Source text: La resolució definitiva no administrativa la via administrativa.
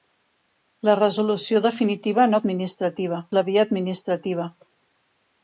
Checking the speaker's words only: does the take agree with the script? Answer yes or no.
yes